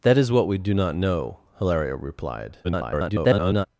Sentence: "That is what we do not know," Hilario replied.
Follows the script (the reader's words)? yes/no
no